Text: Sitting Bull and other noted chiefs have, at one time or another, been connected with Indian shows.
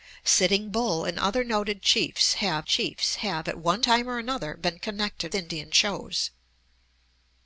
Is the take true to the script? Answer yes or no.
no